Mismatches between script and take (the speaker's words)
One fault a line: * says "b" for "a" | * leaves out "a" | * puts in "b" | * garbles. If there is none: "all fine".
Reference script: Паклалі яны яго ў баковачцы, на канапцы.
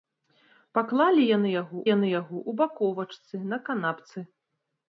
* puts in "яны яго"